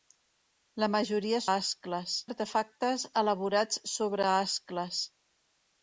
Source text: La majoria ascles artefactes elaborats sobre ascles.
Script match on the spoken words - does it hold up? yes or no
yes